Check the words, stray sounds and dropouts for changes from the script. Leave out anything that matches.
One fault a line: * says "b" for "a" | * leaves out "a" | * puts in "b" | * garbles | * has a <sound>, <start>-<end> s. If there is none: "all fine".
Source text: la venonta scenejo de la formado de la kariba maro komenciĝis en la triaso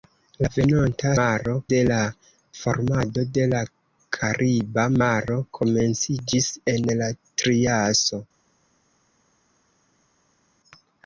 * says "maro" for "scenejo"